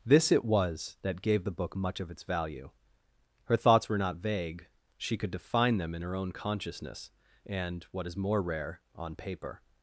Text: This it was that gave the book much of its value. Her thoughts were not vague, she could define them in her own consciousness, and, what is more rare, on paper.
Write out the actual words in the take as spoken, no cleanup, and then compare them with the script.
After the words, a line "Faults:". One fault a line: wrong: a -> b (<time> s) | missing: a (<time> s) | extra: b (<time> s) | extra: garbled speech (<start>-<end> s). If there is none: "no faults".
This it was that gave the book much of its value. Her thoughts were not vague, she could define them in her own consciousness, and, what is more rare, on paper.
Faults:
no faults